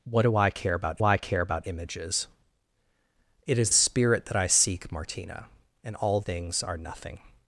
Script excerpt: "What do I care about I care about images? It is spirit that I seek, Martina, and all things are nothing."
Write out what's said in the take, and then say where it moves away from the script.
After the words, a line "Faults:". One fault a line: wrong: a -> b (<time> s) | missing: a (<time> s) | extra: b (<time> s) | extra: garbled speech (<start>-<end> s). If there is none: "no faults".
"What do I care about I care about images? It is spirit that I seek, Martina, and all things are nothing."
Faults:
no faults